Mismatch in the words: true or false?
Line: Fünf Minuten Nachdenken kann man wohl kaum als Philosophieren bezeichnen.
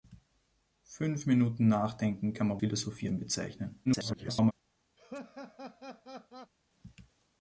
true